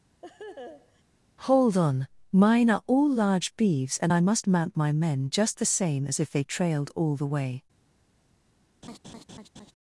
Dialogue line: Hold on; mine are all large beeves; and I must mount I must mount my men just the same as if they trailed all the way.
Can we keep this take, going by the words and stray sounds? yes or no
no